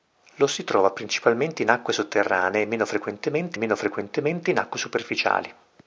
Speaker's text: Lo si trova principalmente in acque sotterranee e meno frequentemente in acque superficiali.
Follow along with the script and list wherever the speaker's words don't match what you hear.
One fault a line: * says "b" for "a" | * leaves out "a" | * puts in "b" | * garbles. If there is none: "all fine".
* puts in "meno frequentemente"